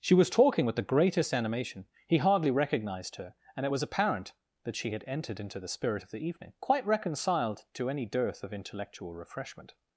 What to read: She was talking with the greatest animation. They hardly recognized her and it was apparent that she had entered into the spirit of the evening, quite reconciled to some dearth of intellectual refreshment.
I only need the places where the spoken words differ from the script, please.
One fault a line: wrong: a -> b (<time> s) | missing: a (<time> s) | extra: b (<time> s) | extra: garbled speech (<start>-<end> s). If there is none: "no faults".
wrong: They -> He (2.1 s)
wrong: some -> any (7.9 s)